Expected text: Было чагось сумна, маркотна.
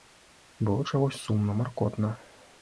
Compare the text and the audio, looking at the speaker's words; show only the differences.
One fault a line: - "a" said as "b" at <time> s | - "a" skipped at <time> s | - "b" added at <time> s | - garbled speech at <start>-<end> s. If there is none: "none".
none